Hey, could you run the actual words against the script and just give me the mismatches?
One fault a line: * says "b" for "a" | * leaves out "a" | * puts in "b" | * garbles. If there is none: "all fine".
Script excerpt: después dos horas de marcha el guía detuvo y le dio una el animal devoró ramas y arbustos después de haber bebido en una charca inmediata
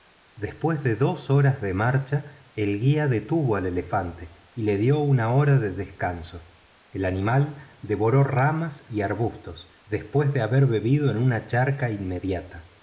* puts in "de"
* puts in "al elefante"
* puts in "hora de descanso"